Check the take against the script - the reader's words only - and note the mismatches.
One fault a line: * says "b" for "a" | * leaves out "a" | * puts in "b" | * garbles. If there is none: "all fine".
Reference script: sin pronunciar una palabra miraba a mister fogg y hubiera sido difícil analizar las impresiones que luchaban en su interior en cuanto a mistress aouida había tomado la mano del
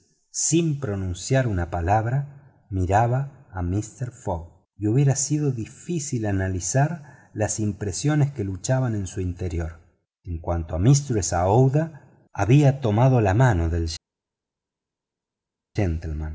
all fine